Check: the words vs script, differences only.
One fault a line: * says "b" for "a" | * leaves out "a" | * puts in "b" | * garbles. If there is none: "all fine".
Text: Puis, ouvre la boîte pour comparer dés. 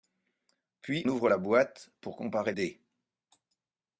all fine